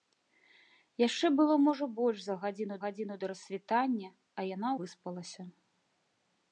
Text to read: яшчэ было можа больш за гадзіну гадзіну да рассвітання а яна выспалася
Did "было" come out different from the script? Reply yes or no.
no